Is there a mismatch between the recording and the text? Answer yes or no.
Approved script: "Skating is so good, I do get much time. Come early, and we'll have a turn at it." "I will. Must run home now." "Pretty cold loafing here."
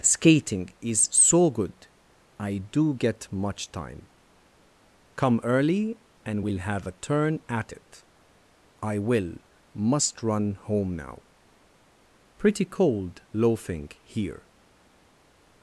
no